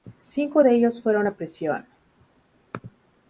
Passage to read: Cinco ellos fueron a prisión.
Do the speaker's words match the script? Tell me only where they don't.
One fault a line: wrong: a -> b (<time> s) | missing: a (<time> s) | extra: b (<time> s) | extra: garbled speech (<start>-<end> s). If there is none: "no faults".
extra: de (0.6 s)